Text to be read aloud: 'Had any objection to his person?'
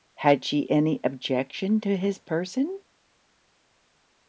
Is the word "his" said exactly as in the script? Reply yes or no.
yes